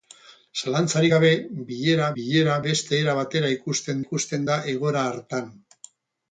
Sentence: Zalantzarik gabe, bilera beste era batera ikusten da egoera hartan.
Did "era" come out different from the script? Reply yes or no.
no